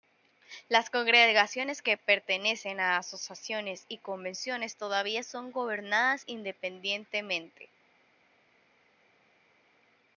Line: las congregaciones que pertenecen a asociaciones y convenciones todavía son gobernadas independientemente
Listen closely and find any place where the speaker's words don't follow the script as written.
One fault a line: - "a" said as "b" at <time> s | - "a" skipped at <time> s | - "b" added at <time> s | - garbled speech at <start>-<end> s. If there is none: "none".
none